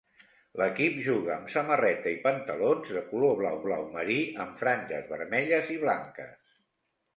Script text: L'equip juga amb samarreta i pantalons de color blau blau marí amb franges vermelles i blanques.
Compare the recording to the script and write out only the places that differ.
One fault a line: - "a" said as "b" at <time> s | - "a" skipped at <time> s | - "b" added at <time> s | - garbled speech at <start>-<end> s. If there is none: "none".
none